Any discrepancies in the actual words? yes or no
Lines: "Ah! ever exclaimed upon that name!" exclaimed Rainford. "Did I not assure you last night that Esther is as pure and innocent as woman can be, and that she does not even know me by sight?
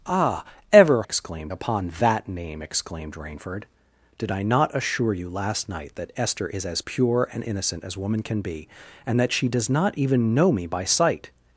no